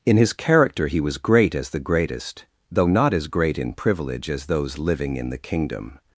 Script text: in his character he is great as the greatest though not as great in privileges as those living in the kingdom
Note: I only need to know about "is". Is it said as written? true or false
false